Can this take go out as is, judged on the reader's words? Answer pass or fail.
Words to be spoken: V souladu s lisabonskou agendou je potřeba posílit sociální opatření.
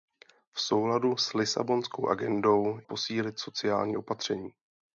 fail